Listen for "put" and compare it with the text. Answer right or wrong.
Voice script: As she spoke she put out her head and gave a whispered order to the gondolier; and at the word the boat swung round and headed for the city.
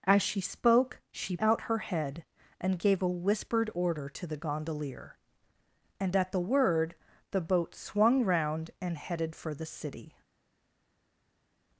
wrong